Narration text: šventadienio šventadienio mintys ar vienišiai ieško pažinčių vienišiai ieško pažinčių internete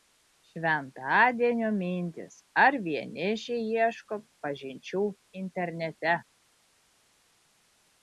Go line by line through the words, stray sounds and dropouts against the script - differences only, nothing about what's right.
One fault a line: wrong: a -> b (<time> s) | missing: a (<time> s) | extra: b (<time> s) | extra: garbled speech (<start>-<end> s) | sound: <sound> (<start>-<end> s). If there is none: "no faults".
missing: šventadienio (1.7 s)
missing: vienišiai ieško pažinčių (5.0 s)